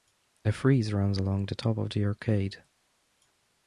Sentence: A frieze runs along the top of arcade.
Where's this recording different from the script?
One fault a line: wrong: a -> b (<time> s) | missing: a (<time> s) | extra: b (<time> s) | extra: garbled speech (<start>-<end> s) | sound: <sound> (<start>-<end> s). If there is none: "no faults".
extra: the (1.9 s)